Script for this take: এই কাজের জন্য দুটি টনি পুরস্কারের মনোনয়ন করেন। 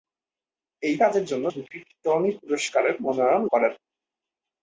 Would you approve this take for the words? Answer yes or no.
yes